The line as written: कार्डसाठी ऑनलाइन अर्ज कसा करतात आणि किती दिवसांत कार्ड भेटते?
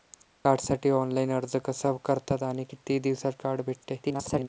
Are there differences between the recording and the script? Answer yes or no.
yes